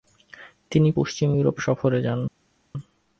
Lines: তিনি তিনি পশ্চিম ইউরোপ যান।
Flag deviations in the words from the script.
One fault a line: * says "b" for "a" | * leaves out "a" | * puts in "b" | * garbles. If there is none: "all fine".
* leaves out "তিনি"
* puts in "সফরে"